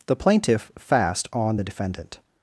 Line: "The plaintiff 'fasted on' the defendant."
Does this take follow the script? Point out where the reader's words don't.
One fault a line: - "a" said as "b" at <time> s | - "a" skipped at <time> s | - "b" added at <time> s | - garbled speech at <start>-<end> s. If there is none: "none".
- "fasted" said as "fast" at 0.8 s